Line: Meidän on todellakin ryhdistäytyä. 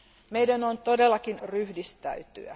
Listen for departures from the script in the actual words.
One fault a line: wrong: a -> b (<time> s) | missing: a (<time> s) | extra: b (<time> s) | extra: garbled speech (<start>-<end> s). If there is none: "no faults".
no faults